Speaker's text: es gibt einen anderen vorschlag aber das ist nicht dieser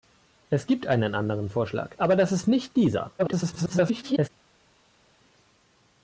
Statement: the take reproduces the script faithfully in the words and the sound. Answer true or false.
false